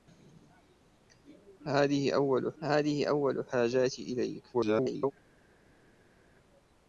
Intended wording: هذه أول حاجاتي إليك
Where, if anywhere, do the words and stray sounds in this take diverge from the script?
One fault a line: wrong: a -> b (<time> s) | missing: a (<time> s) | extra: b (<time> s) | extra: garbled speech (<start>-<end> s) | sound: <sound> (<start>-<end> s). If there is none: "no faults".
extra: هذه أول (2.6 s)
extra: garbled speech (4.5-5.1 s)